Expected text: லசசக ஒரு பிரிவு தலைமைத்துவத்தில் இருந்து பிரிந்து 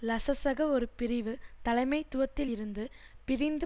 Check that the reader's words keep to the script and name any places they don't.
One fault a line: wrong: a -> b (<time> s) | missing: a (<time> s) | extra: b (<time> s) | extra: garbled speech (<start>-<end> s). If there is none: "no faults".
no faults